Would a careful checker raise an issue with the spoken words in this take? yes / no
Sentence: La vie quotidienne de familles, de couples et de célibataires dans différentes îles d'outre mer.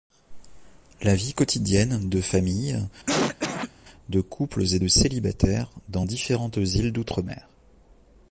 no